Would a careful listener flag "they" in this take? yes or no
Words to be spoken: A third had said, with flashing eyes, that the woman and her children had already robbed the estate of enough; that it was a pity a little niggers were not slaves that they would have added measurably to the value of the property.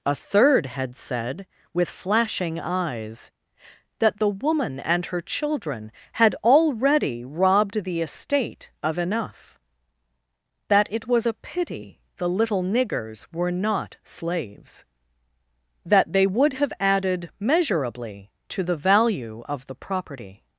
no